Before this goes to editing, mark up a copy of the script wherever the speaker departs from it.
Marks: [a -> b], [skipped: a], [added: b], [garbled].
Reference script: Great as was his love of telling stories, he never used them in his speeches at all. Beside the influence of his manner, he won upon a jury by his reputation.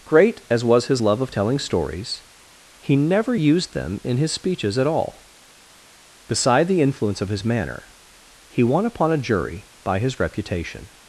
Great as was his love of telling stories, he never used them in his speeches at all. Beside the influence of his manner, he won upon a jury by his reputation.